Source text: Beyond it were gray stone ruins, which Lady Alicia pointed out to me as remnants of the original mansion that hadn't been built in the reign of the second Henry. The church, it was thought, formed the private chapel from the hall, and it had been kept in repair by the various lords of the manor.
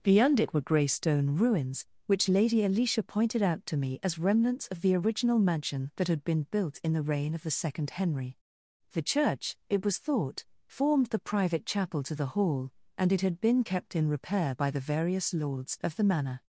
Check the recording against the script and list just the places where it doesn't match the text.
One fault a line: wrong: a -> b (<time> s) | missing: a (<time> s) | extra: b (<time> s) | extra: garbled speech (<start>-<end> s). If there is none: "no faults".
wrong: hadn't -> had (6.1 s)
wrong: from -> to (12.0 s)